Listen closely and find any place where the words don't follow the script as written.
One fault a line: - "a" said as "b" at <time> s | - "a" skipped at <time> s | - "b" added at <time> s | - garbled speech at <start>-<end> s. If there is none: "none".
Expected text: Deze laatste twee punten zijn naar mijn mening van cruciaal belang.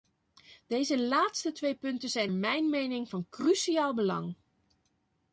- "naar" skipped at 2.3 s